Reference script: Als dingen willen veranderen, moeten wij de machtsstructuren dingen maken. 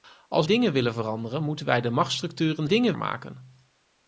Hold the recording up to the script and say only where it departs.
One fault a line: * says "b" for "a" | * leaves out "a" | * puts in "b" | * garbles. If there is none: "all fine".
all fine